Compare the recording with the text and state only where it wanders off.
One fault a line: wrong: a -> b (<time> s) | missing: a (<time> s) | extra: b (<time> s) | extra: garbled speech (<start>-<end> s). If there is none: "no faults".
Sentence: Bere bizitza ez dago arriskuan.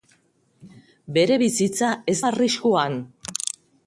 missing: dago (2.2 s)